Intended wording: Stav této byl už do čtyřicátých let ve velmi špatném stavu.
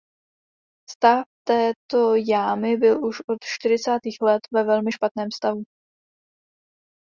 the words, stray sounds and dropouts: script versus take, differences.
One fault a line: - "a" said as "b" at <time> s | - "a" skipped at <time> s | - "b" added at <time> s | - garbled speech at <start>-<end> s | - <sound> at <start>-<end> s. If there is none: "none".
- "jámy" added at 2.1 s
- "do" said as "od" at 3.3 s